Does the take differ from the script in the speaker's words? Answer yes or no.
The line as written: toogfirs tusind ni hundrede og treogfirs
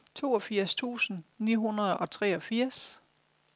no